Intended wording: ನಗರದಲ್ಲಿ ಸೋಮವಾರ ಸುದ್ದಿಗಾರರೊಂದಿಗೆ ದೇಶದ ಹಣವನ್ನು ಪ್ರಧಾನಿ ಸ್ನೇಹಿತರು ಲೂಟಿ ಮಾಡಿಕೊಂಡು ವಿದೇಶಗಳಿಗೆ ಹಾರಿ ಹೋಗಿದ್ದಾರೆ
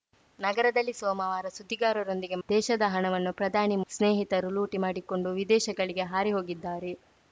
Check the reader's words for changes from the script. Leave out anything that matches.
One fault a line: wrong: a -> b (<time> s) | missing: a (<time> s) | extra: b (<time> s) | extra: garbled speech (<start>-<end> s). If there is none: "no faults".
no faults